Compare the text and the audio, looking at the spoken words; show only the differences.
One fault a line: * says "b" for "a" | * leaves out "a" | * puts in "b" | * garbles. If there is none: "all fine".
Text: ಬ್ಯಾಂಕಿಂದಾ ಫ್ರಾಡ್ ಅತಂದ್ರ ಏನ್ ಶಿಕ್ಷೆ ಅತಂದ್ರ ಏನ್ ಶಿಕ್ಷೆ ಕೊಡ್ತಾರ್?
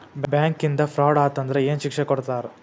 * leaves out "ಅತಂದ್ರ ಏನ್ ಶಿಕ್ಷೆ"